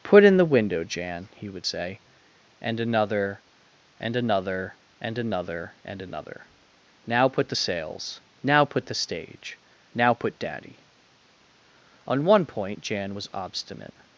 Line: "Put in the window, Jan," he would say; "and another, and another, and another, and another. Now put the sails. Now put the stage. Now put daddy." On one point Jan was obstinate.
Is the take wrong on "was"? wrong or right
right